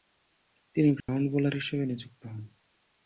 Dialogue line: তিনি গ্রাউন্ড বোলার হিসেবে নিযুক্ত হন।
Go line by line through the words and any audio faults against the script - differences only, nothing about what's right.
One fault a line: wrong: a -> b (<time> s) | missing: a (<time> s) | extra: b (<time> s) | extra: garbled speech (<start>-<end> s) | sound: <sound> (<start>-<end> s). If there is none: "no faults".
sound: dropout (1.0-1.1 s)